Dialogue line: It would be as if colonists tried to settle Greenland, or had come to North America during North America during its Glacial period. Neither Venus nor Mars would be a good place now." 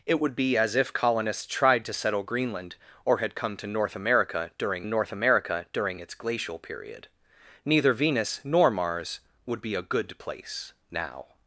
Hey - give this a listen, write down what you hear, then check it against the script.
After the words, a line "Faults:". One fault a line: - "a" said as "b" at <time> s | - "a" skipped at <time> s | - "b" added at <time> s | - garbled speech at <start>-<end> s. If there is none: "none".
It would be as if colonists tried to settle Greenland, or had come to North America during North America during its Glacial period. Neither Venus nor Mars would be a good place now."
Faults:
none